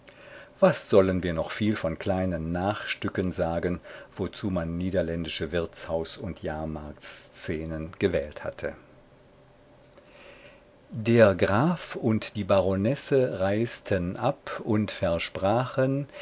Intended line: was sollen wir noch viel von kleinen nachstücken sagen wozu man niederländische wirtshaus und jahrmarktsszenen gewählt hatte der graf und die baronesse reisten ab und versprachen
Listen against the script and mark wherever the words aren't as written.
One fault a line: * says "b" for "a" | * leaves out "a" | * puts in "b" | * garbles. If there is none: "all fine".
all fine